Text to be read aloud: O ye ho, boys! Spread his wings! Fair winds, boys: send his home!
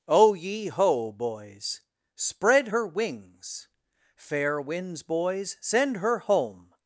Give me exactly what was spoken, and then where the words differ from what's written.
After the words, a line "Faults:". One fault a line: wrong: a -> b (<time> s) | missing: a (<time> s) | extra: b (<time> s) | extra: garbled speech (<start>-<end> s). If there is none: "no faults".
O ye ho, boys! Spread her wings! Fair winds, boys: send her home!
Faults:
wrong: his -> her (2.6 s)
wrong: his -> her (6.0 s)